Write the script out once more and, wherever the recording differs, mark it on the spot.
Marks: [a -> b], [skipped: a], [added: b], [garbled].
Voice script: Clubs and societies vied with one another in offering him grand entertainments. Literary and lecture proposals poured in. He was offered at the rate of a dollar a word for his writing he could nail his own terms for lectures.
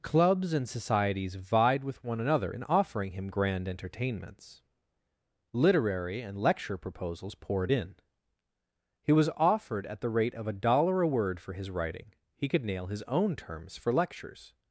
Clubs and societies vied with one another in offering him grand entertainments. Literary and lecture proposals poured in. He was offered at the rate of a dollar a word for his writing he could nail his own terms for lectures.